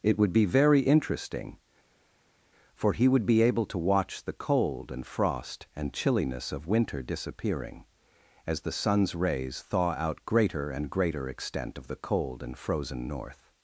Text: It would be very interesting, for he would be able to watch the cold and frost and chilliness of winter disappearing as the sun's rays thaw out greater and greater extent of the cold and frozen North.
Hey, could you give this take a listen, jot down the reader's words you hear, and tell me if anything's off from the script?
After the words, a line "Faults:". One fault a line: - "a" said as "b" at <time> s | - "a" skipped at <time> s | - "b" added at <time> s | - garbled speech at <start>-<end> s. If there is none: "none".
It would be very interesting, for he would be able to watch the cold and frost and chilliness of winter disappearing as the sun's rays thaw out greater and greater extent of the cold and frozen North.
Faults:
none